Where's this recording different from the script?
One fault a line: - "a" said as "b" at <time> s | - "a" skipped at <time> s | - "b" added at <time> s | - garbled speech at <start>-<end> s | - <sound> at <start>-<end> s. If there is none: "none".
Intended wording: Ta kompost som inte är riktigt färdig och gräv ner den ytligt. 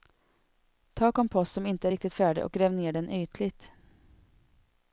none